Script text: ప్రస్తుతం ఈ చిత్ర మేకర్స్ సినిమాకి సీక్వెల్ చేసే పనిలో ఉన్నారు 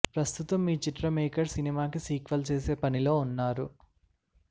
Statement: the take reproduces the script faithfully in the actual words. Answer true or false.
true